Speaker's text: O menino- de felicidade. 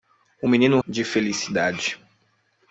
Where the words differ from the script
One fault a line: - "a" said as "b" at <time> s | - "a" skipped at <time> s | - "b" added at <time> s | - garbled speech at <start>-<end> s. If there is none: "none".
none